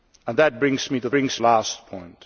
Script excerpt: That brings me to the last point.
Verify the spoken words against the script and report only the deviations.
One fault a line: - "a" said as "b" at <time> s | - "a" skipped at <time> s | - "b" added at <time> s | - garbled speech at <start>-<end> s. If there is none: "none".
- "the" said as "brings" at 1.1 s